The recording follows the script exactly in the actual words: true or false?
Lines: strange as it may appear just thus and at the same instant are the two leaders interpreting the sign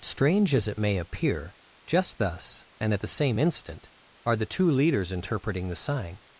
true